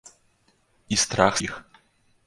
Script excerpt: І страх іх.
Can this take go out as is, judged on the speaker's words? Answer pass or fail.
pass